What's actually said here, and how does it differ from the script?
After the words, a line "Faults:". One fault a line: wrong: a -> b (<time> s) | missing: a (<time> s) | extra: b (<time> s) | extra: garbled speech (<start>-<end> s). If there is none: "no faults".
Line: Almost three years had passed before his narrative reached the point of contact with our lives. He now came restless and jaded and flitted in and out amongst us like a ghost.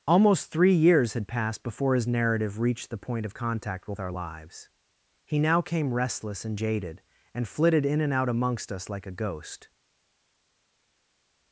Almost three years had passed before his narrative reached the point of contact with our lives. He now came restless and jaded and flitted in and out amongst us like a ghost.
Faults:
no faults